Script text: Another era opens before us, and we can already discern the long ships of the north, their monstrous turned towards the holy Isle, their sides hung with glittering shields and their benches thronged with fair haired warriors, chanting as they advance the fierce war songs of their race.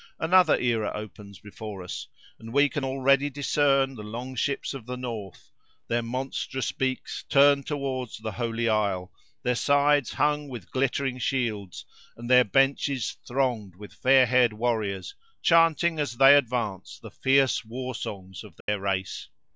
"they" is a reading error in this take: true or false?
false